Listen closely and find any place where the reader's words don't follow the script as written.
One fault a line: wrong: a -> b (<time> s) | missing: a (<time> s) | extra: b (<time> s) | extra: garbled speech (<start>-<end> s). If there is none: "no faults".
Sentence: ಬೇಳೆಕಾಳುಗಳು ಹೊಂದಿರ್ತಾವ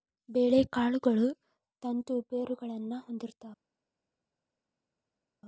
extra: ತಂತು ಬೇರುಗಳನ್ನಾ (1.8 s)